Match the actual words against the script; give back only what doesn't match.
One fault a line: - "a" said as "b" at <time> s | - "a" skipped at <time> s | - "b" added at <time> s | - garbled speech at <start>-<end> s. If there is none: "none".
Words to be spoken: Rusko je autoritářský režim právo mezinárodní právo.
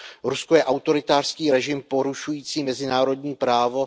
- "právo" said as "porušující" at 1.8 s